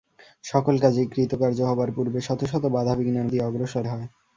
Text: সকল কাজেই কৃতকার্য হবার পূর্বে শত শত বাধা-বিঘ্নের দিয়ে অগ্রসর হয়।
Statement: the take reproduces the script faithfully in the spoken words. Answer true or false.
true